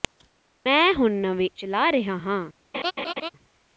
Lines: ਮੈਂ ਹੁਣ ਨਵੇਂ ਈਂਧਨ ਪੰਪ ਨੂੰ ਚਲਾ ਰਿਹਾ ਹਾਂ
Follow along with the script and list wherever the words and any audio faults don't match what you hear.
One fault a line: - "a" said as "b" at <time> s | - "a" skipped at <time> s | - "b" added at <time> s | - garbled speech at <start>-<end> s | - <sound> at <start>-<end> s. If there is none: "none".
- "ਈਂਧਨ ਪੰਪ ਨੂੰ" skipped at 1.5 s
- laugh at 2.7-3.3 s